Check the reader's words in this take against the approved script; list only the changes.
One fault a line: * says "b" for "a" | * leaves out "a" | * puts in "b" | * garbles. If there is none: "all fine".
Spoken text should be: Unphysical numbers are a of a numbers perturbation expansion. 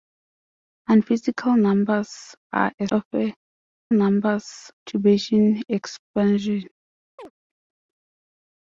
all fine